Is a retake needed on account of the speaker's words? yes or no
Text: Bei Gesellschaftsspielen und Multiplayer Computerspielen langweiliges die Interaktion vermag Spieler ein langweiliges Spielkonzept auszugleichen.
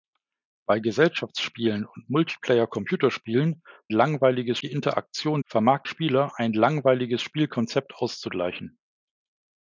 no